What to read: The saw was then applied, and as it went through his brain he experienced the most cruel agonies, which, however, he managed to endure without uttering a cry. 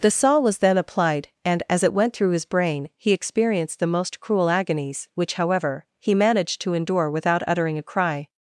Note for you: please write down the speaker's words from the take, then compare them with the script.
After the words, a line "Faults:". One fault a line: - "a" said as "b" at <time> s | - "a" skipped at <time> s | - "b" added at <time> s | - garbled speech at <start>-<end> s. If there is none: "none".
The saw was then applied, and as it went through his brain he experienced the most cruel agonies, which, however, he managed to endure without uttering a cry.
Faults:
none